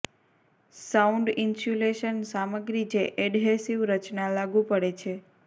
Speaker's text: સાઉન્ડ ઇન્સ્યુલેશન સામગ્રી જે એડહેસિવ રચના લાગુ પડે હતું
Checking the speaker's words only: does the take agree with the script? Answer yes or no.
no